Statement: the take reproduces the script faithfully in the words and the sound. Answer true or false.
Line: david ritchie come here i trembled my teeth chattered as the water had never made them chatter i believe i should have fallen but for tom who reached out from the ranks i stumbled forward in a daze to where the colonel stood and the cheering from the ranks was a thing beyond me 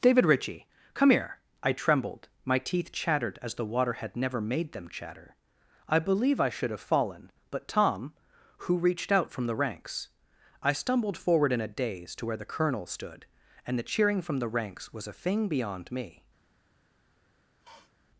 false